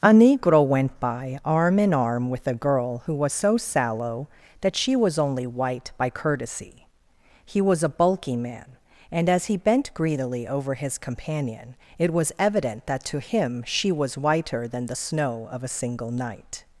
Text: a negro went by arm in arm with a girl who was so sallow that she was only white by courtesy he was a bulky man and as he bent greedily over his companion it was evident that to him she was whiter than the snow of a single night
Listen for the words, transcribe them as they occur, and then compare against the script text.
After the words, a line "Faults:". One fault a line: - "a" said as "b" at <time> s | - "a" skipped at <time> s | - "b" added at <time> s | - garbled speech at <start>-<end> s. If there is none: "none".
a negro went by arm in arm with a girl who was so sallow that she was only white by courtesy he was a bulky man and as he bent greedily over his companion it was evident that to him she was whiter than the snow of a single night
Faults:
none